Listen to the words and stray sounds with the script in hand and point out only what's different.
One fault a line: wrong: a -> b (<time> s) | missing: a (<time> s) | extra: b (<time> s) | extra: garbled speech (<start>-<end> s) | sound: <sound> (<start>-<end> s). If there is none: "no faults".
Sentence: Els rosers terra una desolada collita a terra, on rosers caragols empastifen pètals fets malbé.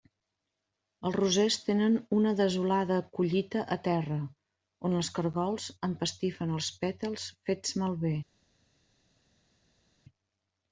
wrong: terra -> tenen (1.6 s)
wrong: rosers -> els (5.0 s)
extra: els (6.6 s)